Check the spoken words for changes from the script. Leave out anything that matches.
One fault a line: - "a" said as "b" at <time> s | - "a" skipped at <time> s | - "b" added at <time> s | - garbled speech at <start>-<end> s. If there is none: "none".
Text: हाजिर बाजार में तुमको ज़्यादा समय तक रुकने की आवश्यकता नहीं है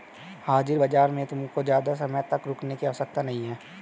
none